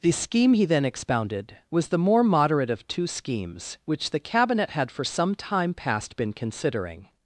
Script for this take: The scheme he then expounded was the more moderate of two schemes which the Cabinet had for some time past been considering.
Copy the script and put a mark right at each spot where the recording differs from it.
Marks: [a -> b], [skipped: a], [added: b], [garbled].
The scheme he then expounded was the more moderate of two schemes which the Cabinet had for some time past been considering.